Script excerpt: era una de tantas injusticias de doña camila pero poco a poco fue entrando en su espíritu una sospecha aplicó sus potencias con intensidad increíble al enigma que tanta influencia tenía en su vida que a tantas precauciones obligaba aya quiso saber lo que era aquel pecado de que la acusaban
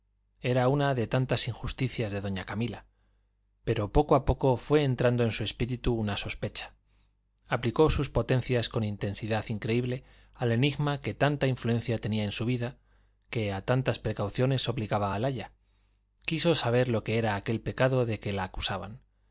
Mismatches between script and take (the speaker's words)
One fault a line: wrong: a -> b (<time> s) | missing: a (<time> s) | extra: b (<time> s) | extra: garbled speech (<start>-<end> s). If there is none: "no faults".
extra: al (15.1 s)